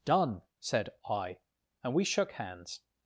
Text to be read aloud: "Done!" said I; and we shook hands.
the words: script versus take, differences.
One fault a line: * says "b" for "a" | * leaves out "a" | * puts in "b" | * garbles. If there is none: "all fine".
all fine